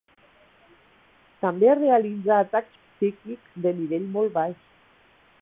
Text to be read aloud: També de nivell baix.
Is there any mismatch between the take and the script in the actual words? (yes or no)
yes